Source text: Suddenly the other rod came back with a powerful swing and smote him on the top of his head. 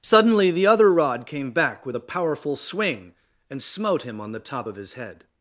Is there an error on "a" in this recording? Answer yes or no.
no